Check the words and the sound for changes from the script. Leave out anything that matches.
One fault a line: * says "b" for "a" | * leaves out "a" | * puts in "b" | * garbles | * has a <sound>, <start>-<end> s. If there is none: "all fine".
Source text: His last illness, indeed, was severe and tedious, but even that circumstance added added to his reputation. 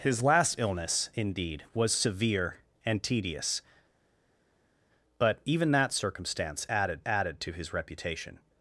all fine